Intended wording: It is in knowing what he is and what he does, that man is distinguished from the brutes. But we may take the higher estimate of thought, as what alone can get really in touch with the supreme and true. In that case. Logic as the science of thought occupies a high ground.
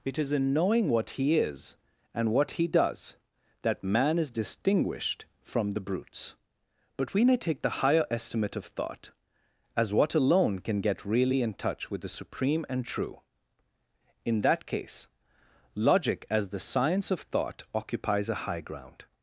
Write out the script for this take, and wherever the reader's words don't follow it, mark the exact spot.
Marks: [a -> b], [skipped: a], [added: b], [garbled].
It is in knowing what he is and what he does, that man is distinguished from the brutes. But we may take the higher estimate of thought, as what alone can get really in touch with the supreme and true. In that case. Logic as the science of thought occupies a high ground.